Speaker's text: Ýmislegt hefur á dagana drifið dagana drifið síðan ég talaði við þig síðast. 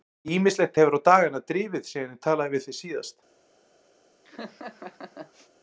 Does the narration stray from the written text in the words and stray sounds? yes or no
yes